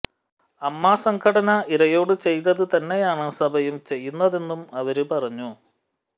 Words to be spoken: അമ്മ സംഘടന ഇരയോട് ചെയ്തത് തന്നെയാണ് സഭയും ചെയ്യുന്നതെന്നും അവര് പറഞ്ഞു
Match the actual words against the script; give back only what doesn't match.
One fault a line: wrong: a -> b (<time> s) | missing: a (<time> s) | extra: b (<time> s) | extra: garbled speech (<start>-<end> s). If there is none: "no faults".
no faults